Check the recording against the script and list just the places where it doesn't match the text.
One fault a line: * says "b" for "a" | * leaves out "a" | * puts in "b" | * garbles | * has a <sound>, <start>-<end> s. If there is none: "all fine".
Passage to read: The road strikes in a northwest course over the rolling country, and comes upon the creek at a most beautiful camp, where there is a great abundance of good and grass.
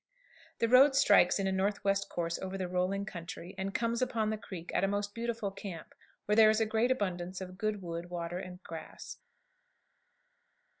* puts in "wood water"